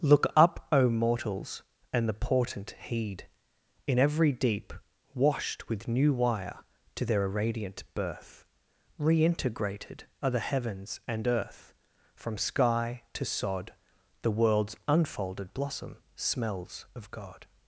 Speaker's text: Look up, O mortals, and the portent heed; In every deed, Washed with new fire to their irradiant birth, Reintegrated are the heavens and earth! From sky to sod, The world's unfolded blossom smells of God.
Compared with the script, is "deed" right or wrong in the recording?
wrong